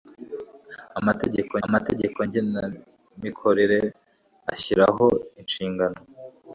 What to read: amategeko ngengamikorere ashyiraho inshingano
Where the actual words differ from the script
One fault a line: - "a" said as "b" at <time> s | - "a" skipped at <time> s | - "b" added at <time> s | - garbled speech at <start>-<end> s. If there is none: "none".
- "amategeko" added at 1.7 s